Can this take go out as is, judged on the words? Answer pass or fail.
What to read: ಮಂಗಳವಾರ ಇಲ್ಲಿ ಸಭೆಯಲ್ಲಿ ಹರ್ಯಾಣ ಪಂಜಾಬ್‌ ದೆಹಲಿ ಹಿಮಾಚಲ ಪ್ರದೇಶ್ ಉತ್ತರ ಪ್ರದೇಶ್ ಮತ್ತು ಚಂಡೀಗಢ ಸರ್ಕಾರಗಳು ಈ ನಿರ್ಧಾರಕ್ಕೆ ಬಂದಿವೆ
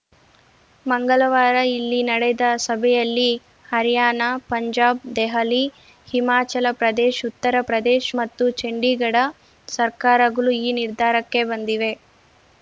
fail